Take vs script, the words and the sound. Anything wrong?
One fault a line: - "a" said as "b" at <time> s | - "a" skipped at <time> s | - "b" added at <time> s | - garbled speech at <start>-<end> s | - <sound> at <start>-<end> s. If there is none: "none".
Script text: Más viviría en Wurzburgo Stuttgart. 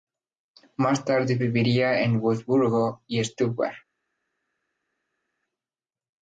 - "tarde" added at 1.1 s
- "y" added at 3.1 s